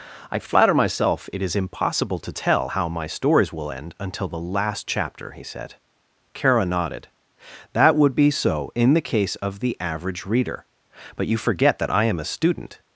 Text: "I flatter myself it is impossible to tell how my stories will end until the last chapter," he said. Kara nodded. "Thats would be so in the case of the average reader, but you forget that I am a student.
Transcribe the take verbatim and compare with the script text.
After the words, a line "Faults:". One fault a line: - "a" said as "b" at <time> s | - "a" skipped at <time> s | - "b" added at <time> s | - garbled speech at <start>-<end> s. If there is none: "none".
"I flatter myself it is impossible to tell how my stories will end until the last chapter," he said. Kara nodded. "That would be so in the case of the average reader, but you forget that I am a student.
Faults:
- "Thats" said as "That" at 7.7 s